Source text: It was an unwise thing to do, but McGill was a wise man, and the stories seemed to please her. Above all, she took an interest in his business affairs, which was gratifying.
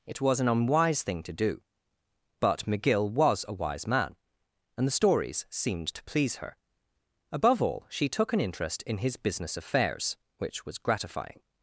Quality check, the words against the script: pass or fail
pass